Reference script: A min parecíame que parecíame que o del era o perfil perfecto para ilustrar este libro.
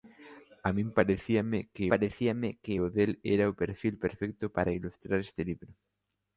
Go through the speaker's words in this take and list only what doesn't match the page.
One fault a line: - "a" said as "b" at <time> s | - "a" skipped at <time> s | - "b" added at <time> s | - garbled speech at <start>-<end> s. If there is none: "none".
none